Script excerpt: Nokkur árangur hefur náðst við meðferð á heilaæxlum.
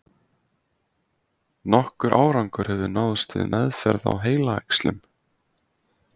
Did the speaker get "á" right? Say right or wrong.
right